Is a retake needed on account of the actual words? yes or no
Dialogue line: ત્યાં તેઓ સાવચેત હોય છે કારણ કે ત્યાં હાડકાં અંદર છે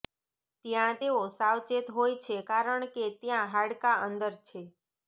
no